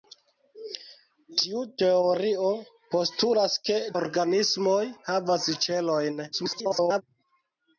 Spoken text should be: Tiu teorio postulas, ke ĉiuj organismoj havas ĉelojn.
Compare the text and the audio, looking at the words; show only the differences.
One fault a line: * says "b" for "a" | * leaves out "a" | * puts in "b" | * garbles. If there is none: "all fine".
* leaves out "ĉiuj"
* garbles